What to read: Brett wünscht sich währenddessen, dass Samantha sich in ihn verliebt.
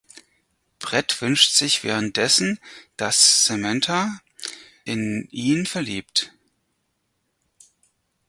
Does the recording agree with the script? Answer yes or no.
no